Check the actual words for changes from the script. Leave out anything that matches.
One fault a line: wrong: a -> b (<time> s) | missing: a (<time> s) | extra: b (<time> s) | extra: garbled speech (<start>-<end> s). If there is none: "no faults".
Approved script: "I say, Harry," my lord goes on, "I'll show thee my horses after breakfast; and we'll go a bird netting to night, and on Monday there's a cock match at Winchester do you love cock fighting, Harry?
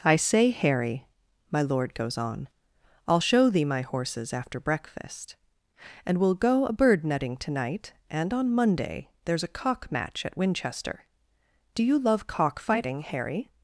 no faults